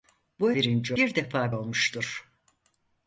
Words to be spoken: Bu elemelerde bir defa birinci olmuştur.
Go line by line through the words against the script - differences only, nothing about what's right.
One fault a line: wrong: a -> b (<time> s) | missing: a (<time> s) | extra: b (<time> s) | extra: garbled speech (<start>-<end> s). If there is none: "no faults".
wrong: elemelerde -> birinci (0.5 s)
missing: birinci (1.5 s)